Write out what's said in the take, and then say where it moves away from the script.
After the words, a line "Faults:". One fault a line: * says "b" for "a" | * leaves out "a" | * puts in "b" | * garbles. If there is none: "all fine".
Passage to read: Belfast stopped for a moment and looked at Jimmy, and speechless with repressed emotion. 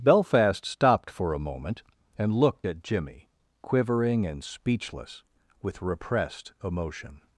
Belfast stopped for a moment and looked at Jimmy, quivering and speechless with repressed emotion.
Faults:
* puts in "quivering"